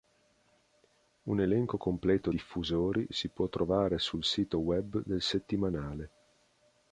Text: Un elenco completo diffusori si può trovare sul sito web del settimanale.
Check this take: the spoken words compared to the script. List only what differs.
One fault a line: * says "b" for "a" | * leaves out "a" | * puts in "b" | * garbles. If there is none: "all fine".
all fine